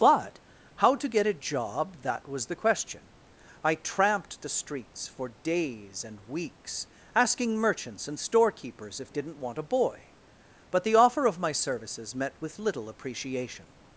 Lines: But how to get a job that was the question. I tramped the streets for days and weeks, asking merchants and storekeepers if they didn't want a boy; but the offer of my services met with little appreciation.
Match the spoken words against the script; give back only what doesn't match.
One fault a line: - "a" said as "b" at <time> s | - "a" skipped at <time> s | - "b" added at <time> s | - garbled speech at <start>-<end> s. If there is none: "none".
- "they" skipped at 9.1 s